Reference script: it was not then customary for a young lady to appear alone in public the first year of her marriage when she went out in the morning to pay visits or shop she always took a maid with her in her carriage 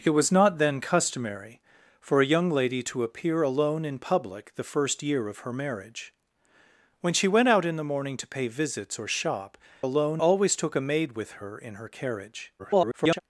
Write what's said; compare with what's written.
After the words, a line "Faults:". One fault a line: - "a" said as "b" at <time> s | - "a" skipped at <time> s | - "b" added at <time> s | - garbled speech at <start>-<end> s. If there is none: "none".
it was not then customary for a young lady to appear alone in public the first year of her marriage when she went out in the morning to pay visits or shop alone always took a maid with her in her carriage [garbled]
Faults:
- "she" said as "alone" at 9.8 s
- garbled speech at 12.6-13.2 s